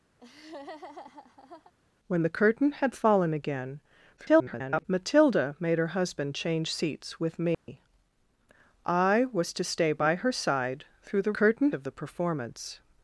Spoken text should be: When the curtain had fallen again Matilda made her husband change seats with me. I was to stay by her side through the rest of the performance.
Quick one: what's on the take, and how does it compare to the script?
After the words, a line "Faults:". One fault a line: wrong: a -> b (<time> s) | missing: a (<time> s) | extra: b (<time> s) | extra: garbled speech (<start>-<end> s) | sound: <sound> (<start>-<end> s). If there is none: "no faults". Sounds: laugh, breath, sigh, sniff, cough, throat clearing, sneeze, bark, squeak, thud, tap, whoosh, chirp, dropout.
When the curtain had fallen again [garbled] Matilda made her husband change seats with me. I was to stay by her side through the curtain of the performance.
Faults:
sound: laugh (0.2-1.7 s)
extra: garbled speech (4.2-4.8 s)
sound: dropout (7.5-7.7 s)
wrong: rest -> curtain (11.4 s)